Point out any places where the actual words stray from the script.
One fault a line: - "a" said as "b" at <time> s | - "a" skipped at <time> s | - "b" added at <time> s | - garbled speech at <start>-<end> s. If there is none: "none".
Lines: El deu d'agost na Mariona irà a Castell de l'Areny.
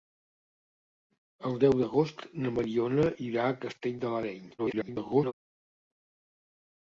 - garbled speech at 4.6-5.3 s